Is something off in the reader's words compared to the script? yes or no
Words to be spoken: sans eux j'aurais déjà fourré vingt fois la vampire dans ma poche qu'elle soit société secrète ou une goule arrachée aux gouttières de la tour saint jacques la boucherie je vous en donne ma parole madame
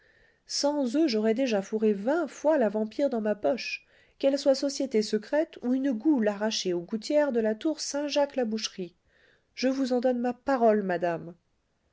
no